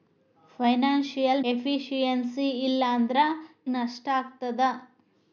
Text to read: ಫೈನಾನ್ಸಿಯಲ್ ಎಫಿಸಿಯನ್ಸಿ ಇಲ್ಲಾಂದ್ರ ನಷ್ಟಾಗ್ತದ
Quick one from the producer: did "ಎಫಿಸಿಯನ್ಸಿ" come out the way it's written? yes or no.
yes